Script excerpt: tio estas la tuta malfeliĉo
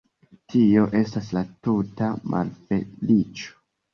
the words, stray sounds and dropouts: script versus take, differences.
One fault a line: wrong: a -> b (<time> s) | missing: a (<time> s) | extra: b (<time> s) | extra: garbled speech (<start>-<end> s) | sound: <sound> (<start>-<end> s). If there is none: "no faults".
no faults